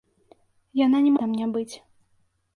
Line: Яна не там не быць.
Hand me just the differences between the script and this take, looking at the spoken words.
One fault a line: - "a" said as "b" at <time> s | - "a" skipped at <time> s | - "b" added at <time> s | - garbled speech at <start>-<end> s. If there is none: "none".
none